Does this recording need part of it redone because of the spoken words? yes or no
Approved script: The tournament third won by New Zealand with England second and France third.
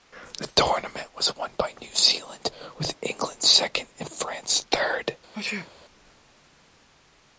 yes